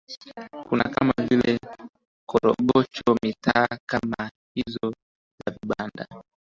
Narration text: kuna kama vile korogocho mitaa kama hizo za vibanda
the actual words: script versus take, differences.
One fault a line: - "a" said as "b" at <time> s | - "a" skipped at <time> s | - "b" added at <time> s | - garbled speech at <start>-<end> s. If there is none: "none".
none